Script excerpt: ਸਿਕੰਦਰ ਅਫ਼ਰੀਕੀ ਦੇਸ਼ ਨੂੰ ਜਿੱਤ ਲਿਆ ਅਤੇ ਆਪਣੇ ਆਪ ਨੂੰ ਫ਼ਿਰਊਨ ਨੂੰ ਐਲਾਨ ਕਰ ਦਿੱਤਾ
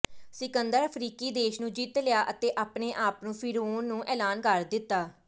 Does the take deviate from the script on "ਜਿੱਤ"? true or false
false